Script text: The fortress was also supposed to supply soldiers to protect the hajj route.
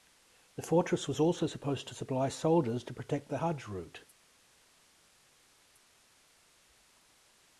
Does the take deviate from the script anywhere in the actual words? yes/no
no